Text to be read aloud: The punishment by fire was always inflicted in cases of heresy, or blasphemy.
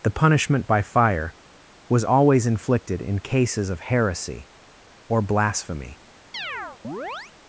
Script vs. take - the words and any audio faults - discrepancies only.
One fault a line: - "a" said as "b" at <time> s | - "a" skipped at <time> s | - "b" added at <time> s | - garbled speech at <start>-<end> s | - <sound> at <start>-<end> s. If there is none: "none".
- chirp at 6.3-7.3 s